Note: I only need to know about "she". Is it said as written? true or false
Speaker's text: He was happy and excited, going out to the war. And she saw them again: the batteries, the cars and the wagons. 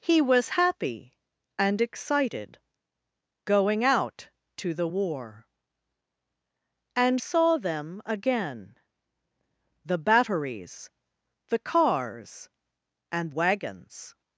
false